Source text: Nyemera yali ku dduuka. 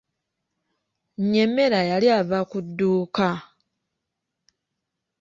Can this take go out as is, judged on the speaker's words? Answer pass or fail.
fail